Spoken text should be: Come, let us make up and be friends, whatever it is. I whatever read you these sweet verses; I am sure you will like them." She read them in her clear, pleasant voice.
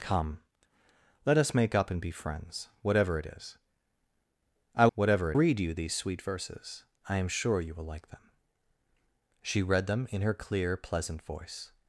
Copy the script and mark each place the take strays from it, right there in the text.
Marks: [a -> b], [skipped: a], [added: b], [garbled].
Come, let us make up and be friends, whatever it is. I whatever read you these sweet verses; I am sure you will like them." She read them in her clear, pleasant voice.